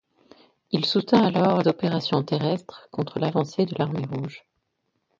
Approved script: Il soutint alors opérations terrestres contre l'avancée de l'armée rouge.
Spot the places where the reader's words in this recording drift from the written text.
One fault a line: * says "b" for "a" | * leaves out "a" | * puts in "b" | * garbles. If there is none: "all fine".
all fine